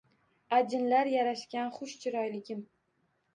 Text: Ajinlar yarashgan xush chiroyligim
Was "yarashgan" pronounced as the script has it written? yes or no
yes